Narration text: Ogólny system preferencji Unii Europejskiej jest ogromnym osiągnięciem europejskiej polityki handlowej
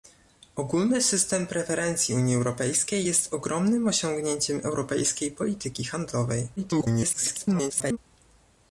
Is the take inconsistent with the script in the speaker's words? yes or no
yes